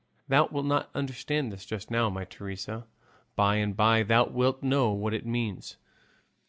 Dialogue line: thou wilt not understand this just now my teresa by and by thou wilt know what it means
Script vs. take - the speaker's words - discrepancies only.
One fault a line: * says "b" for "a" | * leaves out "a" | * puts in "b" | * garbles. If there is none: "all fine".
all fine